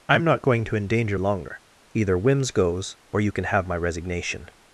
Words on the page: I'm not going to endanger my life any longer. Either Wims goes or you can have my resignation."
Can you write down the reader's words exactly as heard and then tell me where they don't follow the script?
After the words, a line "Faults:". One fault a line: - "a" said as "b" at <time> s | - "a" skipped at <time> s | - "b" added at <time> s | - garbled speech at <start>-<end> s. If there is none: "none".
I'm not going to endanger longer. Either Wims goes or you can have my resignation."
Faults:
- "my life any" skipped at 1.2 s